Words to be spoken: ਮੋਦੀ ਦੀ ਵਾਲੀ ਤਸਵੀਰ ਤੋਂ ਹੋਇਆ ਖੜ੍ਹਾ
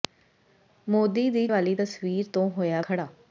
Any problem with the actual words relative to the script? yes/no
no